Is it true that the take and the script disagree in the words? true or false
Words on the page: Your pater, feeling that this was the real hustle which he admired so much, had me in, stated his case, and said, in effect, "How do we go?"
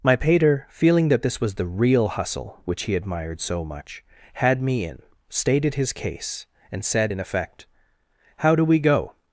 true